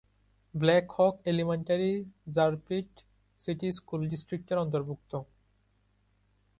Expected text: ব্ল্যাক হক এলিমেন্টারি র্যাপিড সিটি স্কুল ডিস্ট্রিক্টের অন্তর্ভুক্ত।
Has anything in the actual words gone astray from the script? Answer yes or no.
no